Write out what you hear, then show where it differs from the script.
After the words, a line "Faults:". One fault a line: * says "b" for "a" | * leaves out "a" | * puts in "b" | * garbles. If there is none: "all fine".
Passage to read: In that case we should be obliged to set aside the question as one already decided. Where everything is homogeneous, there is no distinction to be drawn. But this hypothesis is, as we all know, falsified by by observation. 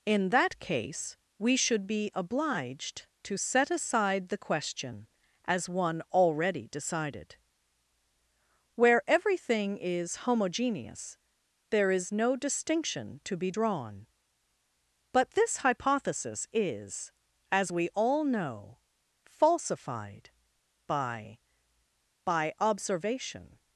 In that case we should be obliged to set aside the question as one already decided. Where everything is homogeneous, there is no distinction to be drawn. But this hypothesis is, as we all know, falsified by by observation.
Faults:
all fine